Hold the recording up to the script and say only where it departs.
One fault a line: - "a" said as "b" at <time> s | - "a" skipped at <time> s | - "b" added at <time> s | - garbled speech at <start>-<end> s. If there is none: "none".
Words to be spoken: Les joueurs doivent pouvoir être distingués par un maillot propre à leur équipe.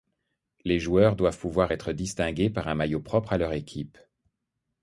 none